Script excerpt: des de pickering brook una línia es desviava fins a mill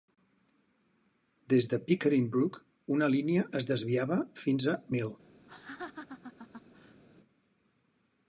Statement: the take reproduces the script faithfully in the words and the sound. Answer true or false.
false